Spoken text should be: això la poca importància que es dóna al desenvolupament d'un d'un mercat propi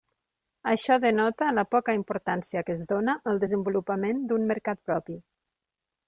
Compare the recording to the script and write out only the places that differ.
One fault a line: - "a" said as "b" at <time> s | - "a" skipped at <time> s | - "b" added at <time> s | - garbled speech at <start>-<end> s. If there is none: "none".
- "denota" added at 1.0 s
- "d'un" skipped at 4.5 s